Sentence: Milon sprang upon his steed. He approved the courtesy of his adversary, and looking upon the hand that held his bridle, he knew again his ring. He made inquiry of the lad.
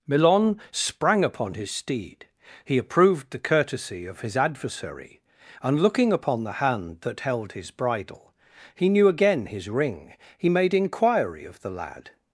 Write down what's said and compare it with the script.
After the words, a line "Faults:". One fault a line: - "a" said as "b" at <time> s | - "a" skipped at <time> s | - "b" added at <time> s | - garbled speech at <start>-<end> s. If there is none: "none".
Milon sprang upon his steed. He approved the courtesy of his adversary, and looking upon the hand that held his bridle, he knew again his ring. He made inquiry of the lad.
Faults:
none